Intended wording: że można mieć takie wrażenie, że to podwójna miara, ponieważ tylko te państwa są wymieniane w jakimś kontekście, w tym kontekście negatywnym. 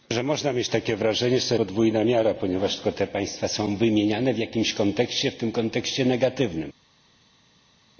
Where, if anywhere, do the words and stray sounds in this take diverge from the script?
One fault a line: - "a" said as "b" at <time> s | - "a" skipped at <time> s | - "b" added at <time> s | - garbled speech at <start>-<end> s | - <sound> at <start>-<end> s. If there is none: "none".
none